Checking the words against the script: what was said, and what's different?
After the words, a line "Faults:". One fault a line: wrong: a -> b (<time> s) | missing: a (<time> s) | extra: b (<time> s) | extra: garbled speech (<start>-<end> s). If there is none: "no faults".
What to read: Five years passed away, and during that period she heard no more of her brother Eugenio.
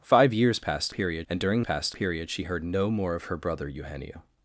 Five years passed period, and during passed period she heard no more of her brother Eugenio.
Faults:
wrong: away -> period (0.9 s)
wrong: that -> passed (1.6 s)